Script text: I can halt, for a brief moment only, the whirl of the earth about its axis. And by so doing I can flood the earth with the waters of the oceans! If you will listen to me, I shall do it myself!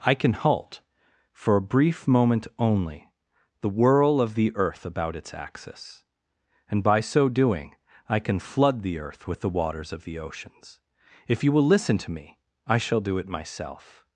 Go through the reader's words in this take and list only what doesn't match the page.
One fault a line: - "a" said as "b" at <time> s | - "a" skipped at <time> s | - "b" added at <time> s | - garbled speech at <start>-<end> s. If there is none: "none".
none